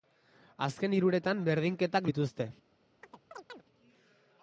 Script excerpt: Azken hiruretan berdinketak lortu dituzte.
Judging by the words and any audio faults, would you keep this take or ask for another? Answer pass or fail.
fail